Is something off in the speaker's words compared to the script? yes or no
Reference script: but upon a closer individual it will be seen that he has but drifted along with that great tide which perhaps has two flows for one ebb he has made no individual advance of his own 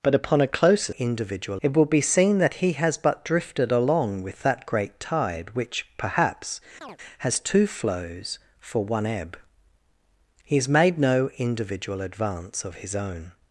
no